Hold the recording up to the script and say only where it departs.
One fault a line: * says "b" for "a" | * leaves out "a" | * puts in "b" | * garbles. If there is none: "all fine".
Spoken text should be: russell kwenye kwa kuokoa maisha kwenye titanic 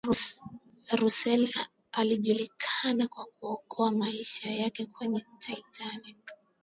* says "alijulikana" for "kwenye"
* puts in "yake"